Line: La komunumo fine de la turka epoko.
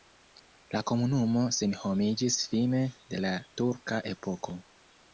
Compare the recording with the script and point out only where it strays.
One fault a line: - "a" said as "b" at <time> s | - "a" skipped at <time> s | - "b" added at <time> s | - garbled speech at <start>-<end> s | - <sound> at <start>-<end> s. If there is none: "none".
- "senhomiĝis" added at 1.6 s